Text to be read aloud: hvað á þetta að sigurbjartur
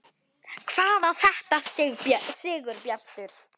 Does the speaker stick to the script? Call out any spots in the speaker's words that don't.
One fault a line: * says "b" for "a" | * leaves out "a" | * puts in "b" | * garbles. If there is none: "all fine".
all fine